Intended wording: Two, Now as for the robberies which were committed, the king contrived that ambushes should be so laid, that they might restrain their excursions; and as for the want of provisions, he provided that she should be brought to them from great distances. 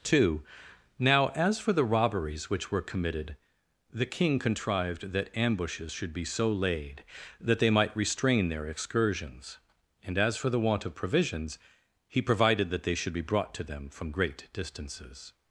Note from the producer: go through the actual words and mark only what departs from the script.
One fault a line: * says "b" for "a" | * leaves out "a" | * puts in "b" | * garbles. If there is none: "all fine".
* says "they" for "she"